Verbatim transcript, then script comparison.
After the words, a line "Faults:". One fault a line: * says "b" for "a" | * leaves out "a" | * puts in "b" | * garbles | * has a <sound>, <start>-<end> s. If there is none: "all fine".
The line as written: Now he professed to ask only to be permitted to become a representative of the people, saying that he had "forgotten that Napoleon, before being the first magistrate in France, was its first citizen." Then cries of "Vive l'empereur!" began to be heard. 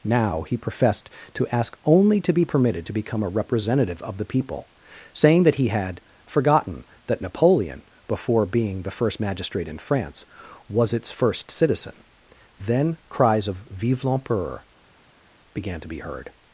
Now he professed to ask only to be permitted to become a representative of the people, saying that he had "forgotten that Napoleon, before being the first magistrate in France, was its first citizen." Then cries of "Vive l'empereur!" began to be heard.
Faults:
all fine